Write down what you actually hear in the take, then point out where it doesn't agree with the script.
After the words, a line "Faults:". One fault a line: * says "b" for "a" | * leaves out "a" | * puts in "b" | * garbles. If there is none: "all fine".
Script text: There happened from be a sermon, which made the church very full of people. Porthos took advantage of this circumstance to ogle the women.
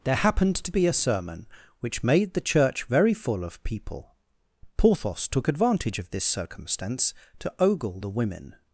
There happened to be a sermon, which made the church very full of people. Porthos took advantage of this circumstance to ogle the women.
Faults:
* says "to" for "from"